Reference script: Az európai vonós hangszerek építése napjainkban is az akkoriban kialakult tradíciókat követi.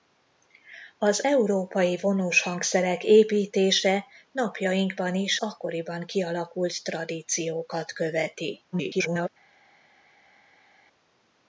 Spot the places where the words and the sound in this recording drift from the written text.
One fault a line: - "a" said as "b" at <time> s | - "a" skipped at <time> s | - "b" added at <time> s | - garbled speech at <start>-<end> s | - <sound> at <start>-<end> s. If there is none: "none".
- "az" skipped at 5.4 s
- garbled speech at 8.7-9.3 s